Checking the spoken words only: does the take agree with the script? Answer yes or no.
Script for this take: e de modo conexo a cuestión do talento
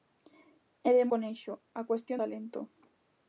no